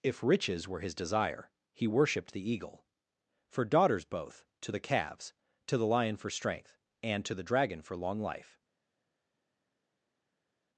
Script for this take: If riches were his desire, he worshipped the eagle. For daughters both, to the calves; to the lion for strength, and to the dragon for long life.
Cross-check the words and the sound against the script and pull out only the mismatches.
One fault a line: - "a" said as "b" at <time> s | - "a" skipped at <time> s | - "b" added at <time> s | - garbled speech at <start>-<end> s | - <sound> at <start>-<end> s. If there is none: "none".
none